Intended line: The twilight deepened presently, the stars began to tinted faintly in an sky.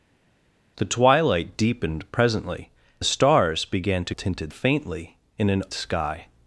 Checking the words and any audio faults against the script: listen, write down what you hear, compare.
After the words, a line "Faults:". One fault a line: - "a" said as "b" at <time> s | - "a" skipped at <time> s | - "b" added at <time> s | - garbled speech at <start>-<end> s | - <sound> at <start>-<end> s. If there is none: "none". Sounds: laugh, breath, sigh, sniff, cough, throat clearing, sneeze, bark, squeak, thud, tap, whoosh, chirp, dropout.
The twilight deepened presently, the stars began to tinted faintly in an sky.
Faults:
none